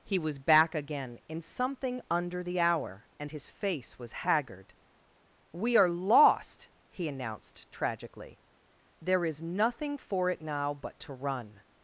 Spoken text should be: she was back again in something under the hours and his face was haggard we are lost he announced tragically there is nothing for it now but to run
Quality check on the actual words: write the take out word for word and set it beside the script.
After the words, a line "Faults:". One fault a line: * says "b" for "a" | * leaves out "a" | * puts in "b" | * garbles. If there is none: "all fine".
he was back again in something under the hour and his face was haggard we are lost he announced tragically there is nothing for it now but to run
Faults:
* says "he" for "she"
* says "hour" for "hours"